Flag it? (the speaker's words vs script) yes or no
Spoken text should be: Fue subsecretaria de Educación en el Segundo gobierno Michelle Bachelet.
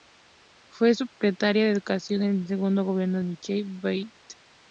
no